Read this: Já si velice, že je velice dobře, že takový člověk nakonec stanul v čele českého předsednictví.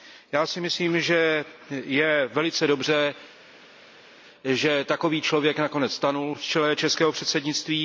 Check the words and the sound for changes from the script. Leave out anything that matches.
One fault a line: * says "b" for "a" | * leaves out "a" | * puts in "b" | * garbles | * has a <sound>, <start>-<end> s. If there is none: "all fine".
* says "myslím" for "velice"